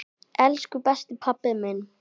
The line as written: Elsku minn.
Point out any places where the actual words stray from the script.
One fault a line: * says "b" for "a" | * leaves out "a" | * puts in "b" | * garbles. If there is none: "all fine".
* puts in "besti pabbi"